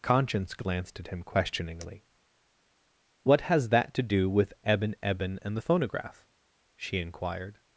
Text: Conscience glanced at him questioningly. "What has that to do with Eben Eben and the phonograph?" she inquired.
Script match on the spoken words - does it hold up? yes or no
yes